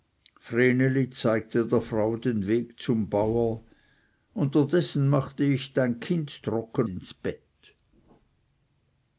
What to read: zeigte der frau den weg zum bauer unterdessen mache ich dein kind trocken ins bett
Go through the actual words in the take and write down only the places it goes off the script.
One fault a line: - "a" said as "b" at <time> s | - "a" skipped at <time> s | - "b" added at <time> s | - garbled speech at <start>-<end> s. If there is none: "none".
none